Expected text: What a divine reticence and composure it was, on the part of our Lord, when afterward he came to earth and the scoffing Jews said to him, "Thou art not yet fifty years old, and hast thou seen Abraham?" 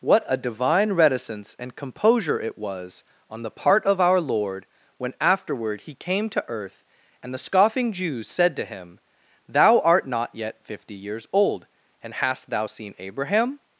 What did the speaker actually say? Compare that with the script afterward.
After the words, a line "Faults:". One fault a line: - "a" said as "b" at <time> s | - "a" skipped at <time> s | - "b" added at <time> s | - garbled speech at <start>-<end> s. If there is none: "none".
What a divine reticence and composure it was, on the part of our Lord, when afterward he came to earth and the scoffing Jews said to him, "Thou art not yet fifty years old, and hast thou seen Abraham?"
Faults:
none